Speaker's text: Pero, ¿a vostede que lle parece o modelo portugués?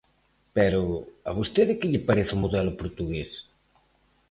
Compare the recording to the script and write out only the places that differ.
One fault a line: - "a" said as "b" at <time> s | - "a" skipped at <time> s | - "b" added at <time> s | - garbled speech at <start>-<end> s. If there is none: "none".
none